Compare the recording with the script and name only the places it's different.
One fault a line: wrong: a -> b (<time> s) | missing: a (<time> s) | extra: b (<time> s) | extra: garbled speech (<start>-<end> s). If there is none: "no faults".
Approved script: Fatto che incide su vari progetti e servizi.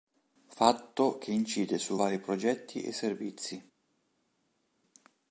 no faults